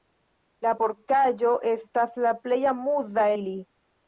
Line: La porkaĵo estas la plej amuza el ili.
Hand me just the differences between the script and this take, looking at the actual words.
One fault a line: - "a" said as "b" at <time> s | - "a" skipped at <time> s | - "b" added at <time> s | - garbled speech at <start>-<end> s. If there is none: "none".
- "el" skipped at 3.3 s